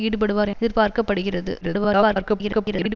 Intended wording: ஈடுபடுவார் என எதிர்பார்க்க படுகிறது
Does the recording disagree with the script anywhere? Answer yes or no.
yes